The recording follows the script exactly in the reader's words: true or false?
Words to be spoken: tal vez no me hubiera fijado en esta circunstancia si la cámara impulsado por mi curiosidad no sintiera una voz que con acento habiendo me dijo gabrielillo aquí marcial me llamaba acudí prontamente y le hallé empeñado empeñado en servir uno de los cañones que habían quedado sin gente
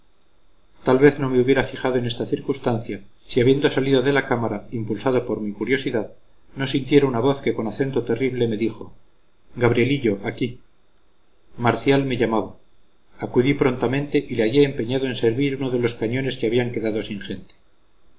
false